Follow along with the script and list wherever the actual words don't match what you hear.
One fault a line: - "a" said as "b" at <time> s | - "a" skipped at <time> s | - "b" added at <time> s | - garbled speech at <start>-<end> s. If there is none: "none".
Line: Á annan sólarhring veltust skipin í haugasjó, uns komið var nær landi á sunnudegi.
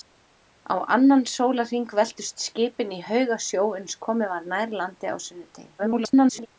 - garbled speech at 5.8-6.5 s